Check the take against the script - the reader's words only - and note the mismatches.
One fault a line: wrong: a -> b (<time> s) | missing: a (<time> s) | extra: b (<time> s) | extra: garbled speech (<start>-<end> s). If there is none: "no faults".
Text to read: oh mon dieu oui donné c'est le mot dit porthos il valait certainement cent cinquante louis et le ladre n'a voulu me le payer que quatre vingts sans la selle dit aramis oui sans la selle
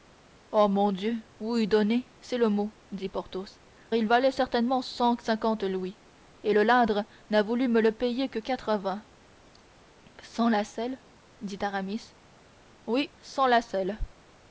no faults